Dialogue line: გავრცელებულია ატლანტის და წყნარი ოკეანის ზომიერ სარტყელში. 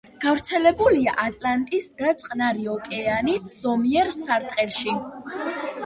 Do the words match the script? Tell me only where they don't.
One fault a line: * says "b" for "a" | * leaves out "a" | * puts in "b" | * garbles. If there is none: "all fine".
all fine